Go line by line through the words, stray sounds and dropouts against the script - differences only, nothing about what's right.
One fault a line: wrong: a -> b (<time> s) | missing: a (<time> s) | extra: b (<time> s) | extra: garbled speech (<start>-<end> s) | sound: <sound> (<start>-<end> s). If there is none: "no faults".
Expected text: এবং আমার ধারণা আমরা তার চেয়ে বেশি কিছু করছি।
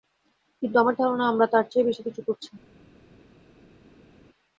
wrong: এবং -> কিন্তু (0.6 s)